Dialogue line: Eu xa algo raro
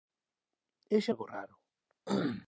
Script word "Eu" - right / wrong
right